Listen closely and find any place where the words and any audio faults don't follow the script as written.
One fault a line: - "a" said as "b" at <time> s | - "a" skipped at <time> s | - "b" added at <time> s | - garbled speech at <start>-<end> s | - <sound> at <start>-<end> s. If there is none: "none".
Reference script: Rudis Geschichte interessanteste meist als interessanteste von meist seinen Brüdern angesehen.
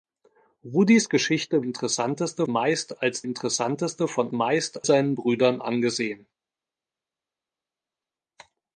none